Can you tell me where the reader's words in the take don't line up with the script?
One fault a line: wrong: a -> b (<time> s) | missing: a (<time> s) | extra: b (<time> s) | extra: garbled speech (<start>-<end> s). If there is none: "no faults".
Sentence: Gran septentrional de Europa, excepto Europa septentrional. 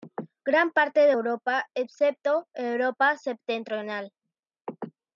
wrong: septentrional -> parte (0.7 s)